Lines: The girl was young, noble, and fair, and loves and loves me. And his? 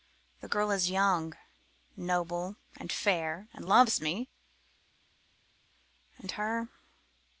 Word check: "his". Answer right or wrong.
wrong